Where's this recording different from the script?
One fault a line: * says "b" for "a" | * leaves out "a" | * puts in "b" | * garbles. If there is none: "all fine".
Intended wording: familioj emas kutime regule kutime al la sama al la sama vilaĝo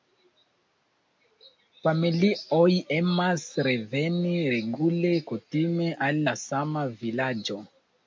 * says "reveni" for "kutime"
* leaves out "al la sama"